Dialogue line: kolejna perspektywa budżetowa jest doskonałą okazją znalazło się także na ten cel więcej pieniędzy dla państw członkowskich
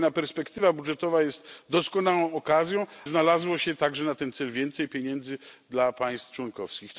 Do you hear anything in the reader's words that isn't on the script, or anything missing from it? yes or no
no